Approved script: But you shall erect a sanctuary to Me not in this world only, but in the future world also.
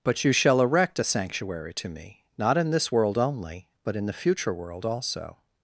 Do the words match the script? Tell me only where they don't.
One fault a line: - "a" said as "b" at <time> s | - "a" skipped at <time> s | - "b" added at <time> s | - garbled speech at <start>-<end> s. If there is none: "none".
none